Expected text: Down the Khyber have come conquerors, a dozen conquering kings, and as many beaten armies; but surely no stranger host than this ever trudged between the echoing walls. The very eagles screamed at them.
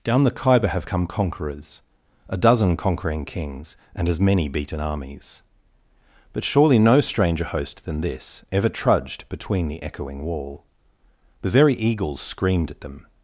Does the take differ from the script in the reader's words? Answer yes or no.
yes